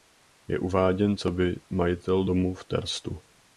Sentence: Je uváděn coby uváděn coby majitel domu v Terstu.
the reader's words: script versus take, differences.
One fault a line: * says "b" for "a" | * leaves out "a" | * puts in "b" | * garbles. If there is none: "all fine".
* leaves out "uváděn coby"